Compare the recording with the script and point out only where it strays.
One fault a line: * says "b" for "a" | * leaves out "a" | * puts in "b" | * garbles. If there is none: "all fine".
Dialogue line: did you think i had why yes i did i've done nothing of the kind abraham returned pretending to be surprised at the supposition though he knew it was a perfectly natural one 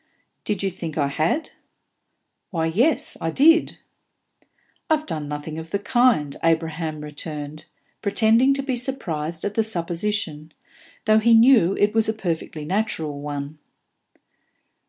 all fine